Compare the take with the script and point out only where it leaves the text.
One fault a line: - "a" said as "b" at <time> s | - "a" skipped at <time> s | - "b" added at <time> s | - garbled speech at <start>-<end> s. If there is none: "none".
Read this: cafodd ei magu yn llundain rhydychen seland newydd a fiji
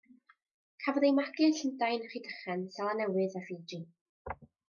none